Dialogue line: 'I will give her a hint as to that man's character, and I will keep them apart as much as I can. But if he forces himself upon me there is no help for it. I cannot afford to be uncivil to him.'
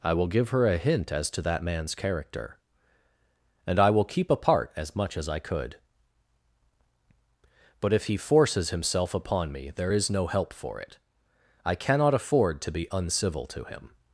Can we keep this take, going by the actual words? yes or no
no